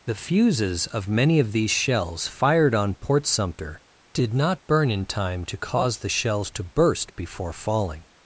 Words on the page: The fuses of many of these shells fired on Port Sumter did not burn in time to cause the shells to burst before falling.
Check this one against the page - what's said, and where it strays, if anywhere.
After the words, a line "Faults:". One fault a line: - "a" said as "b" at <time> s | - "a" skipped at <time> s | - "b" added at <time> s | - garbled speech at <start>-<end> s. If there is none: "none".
The fuses of many of these shells fired on Port Sumter did not burn in time to cause the shells to burst before falling.
Faults:
none